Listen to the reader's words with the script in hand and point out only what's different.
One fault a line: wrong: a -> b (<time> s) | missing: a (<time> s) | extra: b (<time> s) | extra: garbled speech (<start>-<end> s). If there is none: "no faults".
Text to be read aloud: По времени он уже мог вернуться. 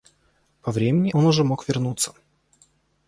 no faults